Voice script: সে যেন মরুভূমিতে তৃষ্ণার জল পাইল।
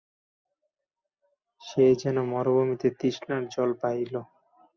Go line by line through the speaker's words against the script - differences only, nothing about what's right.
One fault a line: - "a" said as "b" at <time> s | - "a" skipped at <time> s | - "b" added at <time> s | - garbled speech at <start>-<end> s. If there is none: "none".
none